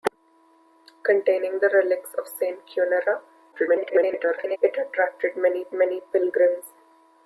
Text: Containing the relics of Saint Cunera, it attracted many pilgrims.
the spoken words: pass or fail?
fail